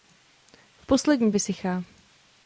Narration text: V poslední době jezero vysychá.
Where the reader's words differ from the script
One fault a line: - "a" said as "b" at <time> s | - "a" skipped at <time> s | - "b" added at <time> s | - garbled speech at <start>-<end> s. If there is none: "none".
- "době jezero" skipped at 1.3 s